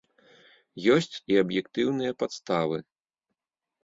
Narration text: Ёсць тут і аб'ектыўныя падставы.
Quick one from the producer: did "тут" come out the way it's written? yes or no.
no